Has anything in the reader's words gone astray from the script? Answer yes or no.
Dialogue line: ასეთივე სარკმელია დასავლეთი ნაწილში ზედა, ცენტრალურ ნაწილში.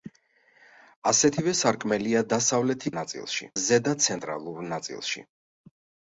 no